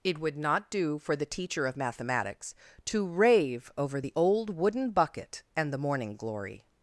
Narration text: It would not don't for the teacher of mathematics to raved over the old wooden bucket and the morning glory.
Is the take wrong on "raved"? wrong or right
wrong